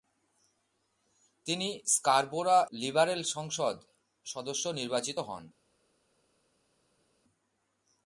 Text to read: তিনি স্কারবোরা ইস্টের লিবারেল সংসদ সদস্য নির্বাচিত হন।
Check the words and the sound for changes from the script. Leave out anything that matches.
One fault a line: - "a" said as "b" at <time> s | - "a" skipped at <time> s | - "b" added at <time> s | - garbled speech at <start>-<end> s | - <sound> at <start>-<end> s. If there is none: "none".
- "ইস্টের" skipped at 2.6 s